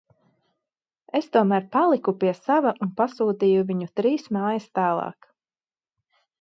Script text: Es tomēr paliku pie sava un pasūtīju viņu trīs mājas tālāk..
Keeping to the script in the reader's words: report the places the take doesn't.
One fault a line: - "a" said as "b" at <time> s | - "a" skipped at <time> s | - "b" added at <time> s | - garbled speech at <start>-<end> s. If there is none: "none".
none